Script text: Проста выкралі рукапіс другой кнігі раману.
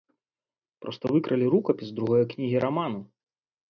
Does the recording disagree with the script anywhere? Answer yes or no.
no